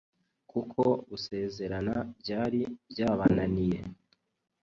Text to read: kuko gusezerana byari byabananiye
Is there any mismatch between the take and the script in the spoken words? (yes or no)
no